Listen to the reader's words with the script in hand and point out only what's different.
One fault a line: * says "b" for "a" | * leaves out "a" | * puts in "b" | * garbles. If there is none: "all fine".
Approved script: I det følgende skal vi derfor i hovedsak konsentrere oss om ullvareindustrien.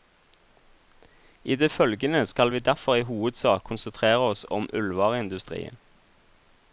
all fine